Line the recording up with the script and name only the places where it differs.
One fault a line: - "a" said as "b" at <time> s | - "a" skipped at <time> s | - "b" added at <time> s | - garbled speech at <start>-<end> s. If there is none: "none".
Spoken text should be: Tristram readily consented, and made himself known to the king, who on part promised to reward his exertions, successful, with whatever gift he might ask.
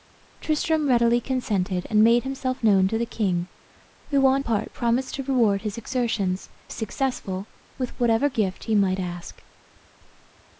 none